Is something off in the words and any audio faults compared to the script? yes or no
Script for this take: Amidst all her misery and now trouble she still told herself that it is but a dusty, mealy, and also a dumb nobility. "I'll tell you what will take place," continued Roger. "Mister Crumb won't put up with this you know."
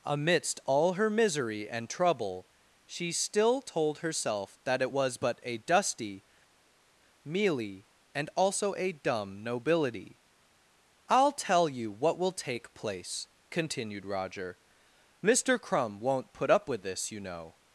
yes